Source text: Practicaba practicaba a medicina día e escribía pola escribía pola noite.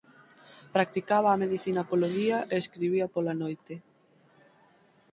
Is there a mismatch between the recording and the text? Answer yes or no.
yes